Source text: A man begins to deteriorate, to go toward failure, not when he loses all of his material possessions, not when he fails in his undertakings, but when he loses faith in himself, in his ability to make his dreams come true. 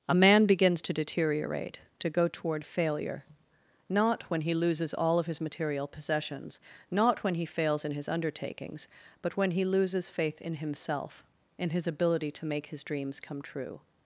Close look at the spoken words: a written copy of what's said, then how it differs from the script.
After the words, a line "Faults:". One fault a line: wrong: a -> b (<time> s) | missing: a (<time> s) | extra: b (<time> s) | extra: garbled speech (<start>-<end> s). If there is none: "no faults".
A man begins to deteriorate, to go toward failure, not when he loses all of his material possessions, not when he fails in his undertakings, but when he loses faith in himself, in his ability to make his dreams come true.
Faults:
no faults